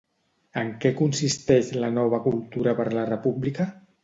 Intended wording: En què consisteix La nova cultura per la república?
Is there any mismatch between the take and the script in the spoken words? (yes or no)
no